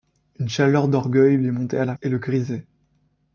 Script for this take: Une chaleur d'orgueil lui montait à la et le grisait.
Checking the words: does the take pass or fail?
pass